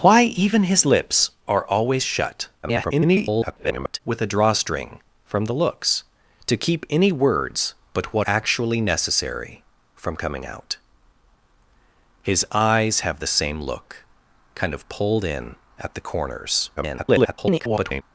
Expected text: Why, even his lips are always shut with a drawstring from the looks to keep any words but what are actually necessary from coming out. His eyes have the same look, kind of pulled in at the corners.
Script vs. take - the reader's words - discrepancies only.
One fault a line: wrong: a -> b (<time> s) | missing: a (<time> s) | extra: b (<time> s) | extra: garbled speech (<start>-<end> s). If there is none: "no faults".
extra: garbled speech (2.6-4.0 s)
missing: are (8.3 s)
extra: garbled speech (16.8-18.0 s)